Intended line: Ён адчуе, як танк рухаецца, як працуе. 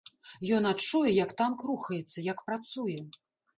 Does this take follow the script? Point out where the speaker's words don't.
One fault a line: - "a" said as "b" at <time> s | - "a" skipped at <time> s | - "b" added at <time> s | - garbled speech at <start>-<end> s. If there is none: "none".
none